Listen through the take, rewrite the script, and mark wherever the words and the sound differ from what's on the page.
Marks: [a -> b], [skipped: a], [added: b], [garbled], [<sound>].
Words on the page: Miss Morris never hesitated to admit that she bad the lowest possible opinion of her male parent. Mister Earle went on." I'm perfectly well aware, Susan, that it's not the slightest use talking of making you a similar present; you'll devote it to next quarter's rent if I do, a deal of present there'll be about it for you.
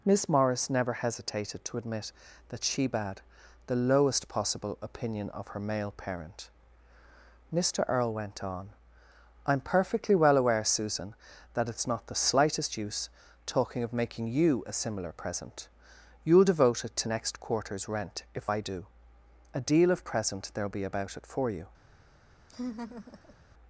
Miss Morris never hesitated to admit that she bad the lowest possible opinion of her male parent. Mister Earle went on." I'm perfectly well aware, Susan, that it's not the slightest use talking of making you a similar present; you'll devote it to next quarter's rent if I do, a deal of present there'll be about it for you. [laugh]